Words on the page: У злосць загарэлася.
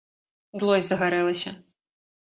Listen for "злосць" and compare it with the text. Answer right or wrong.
right